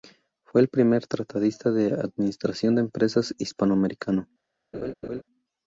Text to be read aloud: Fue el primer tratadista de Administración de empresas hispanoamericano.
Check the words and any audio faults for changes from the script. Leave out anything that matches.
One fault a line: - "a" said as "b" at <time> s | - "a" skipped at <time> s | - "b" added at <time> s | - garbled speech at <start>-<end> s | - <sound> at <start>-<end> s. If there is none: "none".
- laugh at 4.7-5.2 s